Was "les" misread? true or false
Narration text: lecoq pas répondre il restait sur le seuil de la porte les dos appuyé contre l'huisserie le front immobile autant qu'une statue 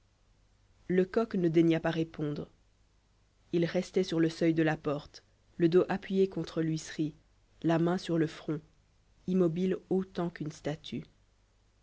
true